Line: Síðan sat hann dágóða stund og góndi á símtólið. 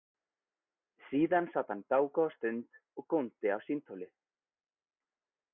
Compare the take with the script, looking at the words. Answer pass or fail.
pass